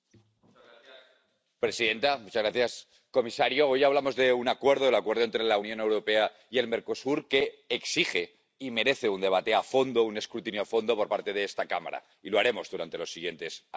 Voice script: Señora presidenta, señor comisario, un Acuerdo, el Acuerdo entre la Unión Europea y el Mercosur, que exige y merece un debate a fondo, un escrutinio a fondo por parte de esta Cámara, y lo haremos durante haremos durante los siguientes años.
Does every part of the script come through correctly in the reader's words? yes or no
no